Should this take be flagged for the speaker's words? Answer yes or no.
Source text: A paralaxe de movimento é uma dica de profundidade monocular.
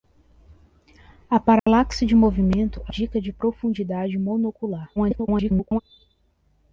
yes